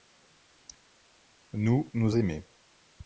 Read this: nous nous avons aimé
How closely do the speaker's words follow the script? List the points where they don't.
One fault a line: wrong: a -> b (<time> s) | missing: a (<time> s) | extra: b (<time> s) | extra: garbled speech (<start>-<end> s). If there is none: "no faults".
missing: avons (2.2 s)